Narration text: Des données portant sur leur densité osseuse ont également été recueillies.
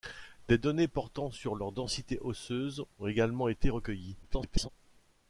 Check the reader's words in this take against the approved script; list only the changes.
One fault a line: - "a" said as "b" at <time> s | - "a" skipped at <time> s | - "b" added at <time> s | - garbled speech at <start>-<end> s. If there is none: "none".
- garbled speech at 4.2-4.7 s